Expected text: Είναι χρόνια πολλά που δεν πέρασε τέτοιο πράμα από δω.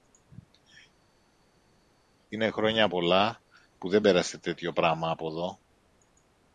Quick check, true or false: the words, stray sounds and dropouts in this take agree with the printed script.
true